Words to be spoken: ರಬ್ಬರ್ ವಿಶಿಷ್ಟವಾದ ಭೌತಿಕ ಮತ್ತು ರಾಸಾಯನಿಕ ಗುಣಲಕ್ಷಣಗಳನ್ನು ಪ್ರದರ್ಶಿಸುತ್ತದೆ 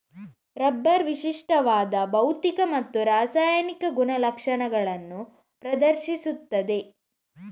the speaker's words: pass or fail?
pass